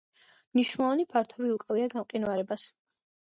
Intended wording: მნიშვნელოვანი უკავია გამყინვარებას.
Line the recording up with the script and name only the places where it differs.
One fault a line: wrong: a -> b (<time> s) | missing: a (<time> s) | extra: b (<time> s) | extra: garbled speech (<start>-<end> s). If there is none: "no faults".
extra: ფართობი (1.1 s)